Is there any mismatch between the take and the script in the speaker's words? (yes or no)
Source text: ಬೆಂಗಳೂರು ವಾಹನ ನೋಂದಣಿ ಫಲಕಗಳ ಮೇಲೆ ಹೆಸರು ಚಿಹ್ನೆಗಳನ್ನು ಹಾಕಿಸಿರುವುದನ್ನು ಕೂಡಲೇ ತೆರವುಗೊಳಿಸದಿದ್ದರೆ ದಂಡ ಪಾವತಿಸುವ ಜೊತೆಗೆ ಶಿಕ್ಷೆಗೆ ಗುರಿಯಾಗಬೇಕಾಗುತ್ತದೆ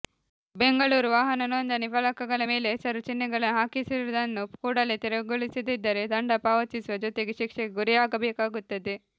no